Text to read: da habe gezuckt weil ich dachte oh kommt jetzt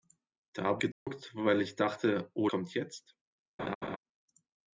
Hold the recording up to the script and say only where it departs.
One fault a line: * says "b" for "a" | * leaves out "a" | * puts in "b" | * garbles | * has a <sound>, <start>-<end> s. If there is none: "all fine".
* has a dropout, 0.9-1.1 s
* has a laugh, 3.6-4.0 s